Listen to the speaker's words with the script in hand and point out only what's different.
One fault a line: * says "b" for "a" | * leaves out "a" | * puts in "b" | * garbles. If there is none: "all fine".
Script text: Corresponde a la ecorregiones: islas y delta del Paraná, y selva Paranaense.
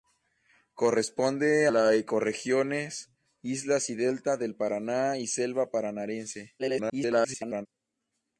* leaves out "a"
* garbles